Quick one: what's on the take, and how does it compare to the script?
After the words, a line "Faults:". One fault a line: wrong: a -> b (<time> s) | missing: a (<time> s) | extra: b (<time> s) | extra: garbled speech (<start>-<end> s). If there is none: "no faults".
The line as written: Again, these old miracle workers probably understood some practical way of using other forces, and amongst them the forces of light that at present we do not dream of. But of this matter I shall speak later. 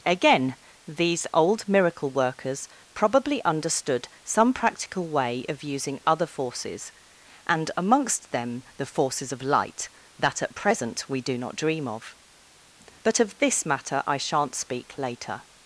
Again, these old miracle workers probably understood some practical way of using other forces, and amongst them the forces of light that at present we do not dream of. But of this matter I shan't speak later.
Faults:
wrong: shall -> shan't (14.2 s)